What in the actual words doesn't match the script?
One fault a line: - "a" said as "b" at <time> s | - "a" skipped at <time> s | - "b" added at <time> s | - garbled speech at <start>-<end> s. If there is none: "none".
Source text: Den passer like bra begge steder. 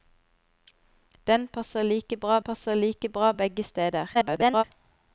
- "passer like bra" added at 2.4 s
- garbled speech at 4.1-4.6 s